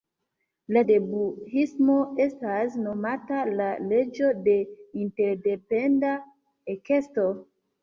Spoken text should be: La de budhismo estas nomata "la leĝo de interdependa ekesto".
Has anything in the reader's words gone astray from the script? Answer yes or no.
no